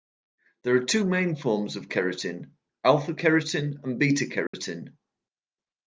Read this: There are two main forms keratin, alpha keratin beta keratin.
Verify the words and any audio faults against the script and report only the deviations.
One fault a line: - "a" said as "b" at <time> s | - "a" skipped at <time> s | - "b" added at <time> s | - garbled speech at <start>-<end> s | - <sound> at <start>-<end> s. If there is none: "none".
- "of" added at 1.8 s
- "and" added at 3.8 s
- dropout at 4.5-4.5 s